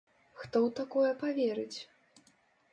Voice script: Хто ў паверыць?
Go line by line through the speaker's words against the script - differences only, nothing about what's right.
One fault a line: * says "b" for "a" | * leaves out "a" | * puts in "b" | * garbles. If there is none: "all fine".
* puts in "такое"